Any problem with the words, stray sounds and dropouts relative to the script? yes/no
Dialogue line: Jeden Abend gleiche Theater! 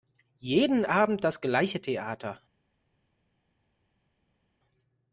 yes